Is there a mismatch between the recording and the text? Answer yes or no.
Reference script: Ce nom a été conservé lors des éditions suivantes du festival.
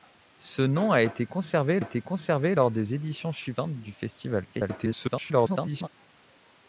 yes